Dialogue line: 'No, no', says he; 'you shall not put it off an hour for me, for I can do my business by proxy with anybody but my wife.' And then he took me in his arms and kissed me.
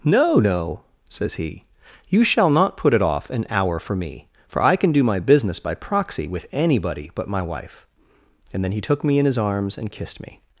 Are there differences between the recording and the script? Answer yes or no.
no